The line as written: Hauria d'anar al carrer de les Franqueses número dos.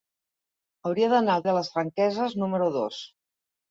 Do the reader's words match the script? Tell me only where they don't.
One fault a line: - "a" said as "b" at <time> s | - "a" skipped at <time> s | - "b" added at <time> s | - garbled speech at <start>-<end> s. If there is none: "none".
- "carrer" skipped at 1.4 s